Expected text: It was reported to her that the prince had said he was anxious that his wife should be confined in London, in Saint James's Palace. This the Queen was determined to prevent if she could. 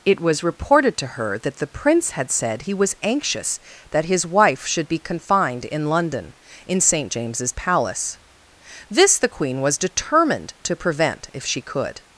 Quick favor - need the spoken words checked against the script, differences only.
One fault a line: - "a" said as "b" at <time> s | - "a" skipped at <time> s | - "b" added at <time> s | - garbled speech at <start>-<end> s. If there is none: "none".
none